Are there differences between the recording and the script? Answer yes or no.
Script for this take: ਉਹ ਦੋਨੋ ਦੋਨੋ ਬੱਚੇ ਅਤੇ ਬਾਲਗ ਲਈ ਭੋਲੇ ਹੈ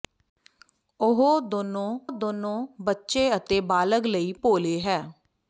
no